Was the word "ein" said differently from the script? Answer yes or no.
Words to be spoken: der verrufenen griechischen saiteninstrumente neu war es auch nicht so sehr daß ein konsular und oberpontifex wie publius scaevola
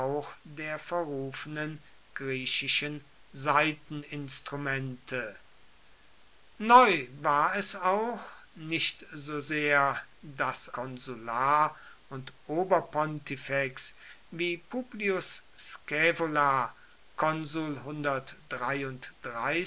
yes